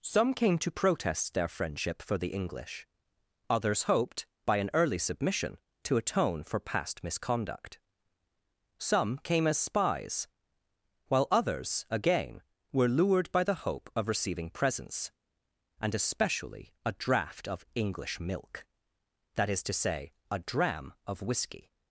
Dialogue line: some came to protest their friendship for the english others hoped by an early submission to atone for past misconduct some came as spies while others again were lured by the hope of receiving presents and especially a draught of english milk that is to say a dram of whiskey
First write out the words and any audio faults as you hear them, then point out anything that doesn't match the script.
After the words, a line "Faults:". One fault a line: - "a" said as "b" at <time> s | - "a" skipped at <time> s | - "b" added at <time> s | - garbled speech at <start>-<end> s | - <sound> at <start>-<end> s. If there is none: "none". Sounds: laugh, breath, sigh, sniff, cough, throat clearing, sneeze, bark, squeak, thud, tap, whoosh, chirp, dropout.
some came to protest their friendship for the english others hoped by an early submission to atone for past misconduct some came as spies while others again were lured by the hope of receiving presents and especially a draught of english milk that is to say a dram of whiskey
Faults:
none